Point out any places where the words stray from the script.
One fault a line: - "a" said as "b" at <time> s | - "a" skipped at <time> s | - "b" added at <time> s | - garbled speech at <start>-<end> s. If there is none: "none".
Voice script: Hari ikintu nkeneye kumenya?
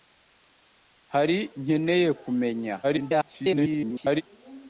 - "ikintu" skipped at 1.4 s
- garbled speech at 2.8-4.2 s